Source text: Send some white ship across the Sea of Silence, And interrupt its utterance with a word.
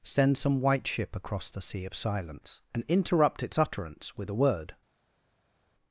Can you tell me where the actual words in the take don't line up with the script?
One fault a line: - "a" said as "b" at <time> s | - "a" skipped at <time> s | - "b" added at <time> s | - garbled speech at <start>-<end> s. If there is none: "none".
none